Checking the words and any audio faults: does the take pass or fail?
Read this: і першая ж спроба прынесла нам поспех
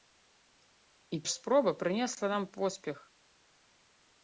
fail